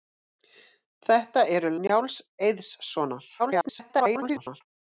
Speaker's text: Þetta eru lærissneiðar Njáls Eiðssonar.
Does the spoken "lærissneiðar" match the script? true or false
false